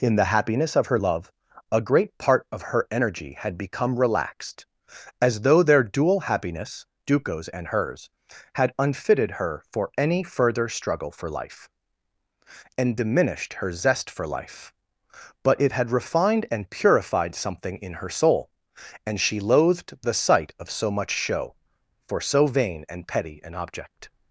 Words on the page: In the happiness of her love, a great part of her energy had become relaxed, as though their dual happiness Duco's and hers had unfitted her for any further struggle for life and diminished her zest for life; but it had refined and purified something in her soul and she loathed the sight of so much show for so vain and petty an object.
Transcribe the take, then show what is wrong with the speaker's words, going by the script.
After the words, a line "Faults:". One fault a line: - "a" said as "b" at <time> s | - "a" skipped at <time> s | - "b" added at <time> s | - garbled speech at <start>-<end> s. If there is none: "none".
In the happiness of her love, a great part of her energy had become relaxed, as though their dual happiness Duco's and hers had unfitted her for any further struggle for life and diminished her zest for life; but it had refined and purified something in her soul and she loathed the sight of so much show for so vain and petty an object.
Faults:
none